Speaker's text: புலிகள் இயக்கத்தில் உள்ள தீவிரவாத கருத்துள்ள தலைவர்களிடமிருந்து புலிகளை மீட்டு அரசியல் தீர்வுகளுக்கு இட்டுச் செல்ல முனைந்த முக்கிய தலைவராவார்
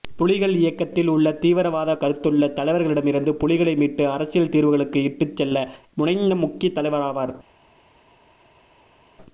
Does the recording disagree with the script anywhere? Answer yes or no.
no